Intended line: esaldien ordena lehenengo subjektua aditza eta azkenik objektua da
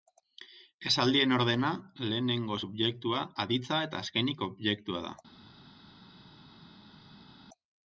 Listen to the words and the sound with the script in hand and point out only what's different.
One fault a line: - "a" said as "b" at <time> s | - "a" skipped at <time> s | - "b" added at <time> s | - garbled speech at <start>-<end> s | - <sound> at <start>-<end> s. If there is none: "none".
none